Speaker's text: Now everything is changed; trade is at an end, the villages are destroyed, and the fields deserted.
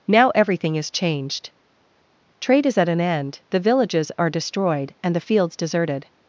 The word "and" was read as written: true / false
true